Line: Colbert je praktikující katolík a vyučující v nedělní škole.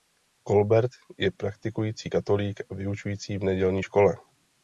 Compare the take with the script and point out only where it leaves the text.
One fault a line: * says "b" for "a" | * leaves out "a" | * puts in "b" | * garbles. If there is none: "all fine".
all fine